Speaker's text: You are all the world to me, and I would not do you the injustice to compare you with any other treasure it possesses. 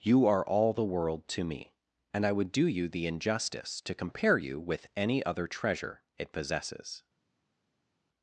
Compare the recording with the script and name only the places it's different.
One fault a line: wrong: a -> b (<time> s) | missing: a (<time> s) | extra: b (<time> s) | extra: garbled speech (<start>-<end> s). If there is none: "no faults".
missing: not (2.5 s)